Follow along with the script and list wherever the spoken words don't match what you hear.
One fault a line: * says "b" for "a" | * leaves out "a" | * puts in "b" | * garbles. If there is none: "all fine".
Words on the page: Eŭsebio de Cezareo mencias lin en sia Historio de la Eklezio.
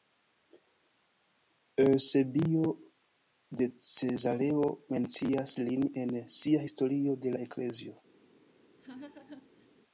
all fine